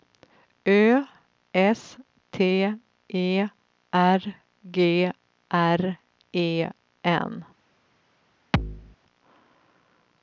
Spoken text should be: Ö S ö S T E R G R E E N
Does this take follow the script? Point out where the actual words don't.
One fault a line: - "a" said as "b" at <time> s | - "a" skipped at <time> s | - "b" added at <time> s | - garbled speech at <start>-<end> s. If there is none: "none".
- "ö S" skipped at 2.0 s
- "E" skipped at 6.7 s